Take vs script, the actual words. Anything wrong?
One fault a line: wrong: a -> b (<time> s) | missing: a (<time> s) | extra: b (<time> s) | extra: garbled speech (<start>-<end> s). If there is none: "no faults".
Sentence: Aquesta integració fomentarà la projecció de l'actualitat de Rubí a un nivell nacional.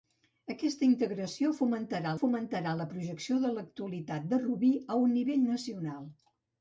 extra: fomentarà (2.2 s)